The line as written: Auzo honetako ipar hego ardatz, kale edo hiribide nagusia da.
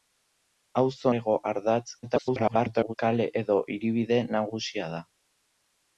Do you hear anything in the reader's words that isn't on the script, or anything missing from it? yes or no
yes